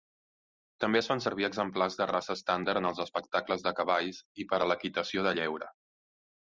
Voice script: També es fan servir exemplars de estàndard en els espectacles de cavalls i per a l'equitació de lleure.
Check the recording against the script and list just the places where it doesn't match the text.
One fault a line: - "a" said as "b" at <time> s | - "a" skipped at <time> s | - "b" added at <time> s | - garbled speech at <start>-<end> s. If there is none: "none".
- "raça" added at 2.1 s